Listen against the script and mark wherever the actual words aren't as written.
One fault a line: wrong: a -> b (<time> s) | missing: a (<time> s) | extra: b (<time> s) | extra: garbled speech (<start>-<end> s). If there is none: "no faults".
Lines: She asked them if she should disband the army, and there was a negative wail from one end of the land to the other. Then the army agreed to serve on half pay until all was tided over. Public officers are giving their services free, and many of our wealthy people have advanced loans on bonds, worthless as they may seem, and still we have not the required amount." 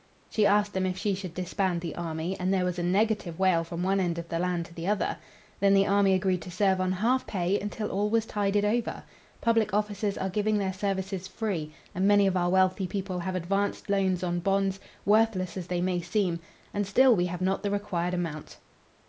no faults